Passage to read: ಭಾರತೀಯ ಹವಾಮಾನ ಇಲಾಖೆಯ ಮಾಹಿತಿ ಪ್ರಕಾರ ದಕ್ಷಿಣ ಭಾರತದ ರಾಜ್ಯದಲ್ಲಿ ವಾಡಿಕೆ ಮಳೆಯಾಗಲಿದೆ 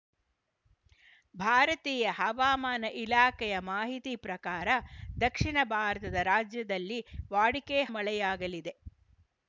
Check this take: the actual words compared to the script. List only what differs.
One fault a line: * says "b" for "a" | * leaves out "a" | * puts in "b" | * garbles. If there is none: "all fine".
all fine